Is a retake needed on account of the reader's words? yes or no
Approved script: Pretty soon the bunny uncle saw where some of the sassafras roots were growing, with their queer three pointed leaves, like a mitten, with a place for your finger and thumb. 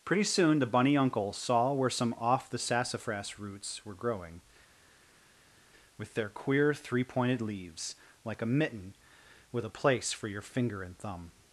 yes